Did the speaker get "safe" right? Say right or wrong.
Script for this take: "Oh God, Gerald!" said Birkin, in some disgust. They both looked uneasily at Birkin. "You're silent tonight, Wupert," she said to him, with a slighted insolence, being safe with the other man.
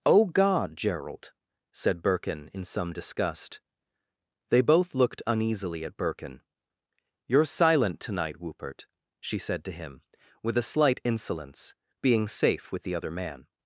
right